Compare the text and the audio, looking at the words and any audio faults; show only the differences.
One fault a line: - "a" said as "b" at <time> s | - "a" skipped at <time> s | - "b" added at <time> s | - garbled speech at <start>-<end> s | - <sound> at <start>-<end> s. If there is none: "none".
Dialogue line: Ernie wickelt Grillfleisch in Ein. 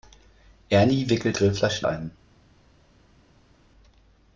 none